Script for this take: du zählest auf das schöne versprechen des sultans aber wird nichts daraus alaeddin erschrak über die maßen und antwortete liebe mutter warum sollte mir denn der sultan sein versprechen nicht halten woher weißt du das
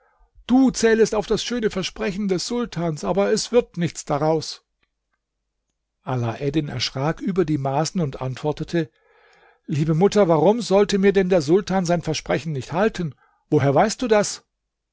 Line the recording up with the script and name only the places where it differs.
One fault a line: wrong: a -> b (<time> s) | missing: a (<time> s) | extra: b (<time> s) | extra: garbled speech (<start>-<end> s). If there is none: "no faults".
extra: es (3.3 s)